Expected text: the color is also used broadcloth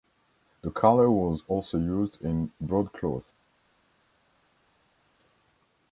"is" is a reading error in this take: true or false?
true